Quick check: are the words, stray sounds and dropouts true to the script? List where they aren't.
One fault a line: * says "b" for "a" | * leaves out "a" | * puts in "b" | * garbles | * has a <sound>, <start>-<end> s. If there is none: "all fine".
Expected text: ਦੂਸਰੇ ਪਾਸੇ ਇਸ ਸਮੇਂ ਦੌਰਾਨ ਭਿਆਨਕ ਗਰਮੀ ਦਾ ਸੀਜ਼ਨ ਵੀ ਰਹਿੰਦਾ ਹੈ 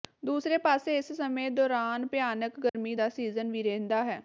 * has a dropout, 2.7-2.7 s